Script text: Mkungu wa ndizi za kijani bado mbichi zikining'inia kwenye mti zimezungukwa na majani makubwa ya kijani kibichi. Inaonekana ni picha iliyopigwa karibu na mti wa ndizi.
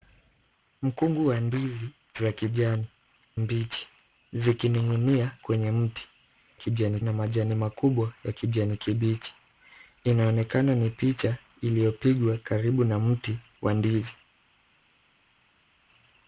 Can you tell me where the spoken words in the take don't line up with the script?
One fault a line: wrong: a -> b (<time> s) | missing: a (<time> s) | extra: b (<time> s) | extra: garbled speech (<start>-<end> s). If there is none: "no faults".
missing: bado (2.9 s)
wrong: zimezungukwa -> kijani (6.5 s)